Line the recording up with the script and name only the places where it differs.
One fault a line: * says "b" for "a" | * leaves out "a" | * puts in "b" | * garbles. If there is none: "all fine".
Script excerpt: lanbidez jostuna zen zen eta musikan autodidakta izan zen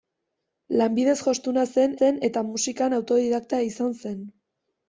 all fine